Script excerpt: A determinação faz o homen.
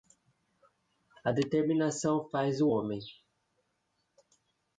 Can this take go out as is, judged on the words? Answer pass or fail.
pass